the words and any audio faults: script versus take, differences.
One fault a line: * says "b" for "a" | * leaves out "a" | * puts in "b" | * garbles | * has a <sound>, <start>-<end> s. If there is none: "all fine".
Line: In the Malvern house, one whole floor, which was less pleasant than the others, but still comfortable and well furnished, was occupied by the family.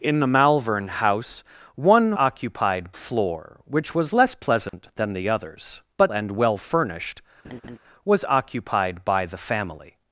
* says "occupied" for "whole"
* has a dropout, 4.7-4.7 s
* leaves out "still comfortable"
* has a laugh, 7.4-7.8 s